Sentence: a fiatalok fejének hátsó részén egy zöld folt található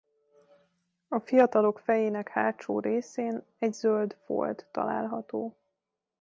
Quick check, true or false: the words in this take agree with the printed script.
true